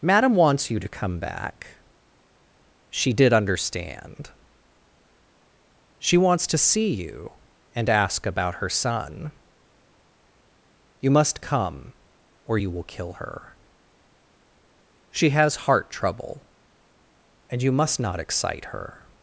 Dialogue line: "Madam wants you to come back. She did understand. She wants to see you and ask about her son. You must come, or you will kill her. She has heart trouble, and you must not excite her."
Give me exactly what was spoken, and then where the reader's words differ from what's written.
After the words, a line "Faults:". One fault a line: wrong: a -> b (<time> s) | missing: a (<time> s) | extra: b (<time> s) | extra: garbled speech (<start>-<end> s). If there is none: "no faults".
"Madam wants you to come back. She did understand. She wants to see you and ask about her son. You must come, or you will kill her. She has heart trouble, and you must not excite her."
Faults:
no faults